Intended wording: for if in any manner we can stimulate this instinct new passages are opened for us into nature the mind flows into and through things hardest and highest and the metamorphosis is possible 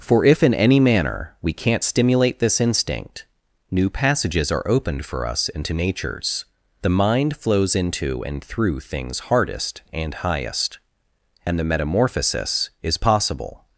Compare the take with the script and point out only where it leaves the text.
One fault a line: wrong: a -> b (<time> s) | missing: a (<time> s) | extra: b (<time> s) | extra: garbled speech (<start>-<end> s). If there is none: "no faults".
wrong: can -> can't (1.5 s)
wrong: nature -> natures (5.7 s)